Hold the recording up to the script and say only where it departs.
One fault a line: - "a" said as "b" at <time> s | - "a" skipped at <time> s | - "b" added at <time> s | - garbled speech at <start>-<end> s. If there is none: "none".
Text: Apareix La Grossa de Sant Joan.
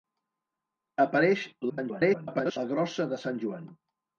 - garbled speech at 1.7-2.6 s